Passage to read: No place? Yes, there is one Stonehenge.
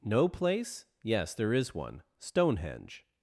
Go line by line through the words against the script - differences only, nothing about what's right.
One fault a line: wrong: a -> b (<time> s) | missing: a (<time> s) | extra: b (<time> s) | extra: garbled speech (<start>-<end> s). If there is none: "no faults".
no faults